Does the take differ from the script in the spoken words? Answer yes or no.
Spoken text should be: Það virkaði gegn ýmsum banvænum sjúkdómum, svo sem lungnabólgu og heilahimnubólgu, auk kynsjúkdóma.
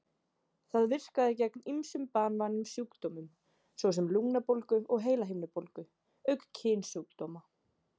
no